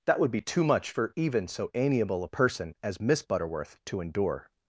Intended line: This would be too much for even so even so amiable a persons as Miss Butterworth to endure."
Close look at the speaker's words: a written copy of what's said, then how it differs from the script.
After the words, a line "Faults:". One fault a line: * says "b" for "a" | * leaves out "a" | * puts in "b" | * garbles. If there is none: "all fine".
That would be too much for even so amiable a person as Miss Butterworth to endure."
Faults:
* says "That" for "This"
* leaves out "even so"
* says "person" for "persons"